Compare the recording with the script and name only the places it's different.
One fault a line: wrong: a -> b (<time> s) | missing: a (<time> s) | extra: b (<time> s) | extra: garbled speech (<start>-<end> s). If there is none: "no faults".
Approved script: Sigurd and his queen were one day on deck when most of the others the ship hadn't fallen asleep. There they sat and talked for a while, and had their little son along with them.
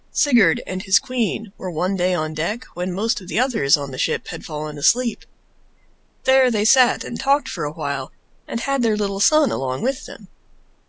extra: on (3.8 s)
wrong: hadn't -> had (4.3 s)